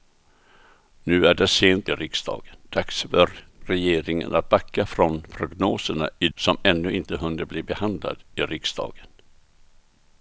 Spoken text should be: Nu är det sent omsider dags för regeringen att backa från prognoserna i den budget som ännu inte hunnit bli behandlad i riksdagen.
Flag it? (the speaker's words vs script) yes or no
yes